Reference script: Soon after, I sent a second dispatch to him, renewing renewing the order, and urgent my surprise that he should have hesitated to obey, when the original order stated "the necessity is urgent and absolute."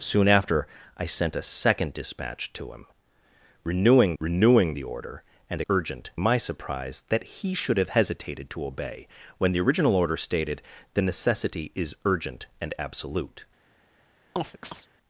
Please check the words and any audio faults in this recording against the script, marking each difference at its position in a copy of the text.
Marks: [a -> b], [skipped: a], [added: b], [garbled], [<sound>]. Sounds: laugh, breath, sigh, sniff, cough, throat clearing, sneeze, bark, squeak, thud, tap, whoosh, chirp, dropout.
Soon after, I sent a second dispatch to him, renewing renewing the order, and urgent my surprise that he should have hesitated to obey, when the original order stated "the necessity is urgent and absolute." [chirp]